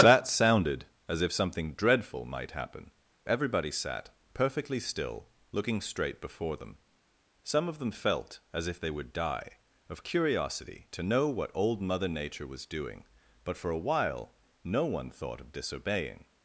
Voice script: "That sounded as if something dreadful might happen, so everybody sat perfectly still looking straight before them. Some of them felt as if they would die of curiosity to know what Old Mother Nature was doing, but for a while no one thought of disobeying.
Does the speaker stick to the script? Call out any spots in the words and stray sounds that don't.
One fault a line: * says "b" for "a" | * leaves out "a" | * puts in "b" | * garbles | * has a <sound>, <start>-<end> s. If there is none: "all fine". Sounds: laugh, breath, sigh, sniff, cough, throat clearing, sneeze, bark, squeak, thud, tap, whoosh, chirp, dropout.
* leaves out "so"